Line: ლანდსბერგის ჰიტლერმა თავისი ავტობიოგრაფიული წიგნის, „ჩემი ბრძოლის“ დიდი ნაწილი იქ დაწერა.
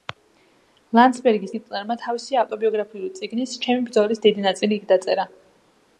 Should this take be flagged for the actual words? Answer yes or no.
no